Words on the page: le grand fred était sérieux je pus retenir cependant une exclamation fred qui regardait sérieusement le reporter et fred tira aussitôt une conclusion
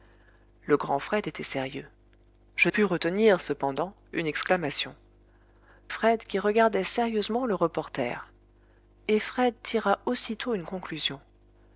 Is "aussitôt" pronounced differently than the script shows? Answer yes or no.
no